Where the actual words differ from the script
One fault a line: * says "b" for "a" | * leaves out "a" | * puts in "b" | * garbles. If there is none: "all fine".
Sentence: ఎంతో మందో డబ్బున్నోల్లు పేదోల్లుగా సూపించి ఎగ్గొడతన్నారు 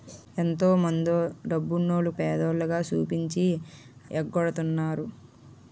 all fine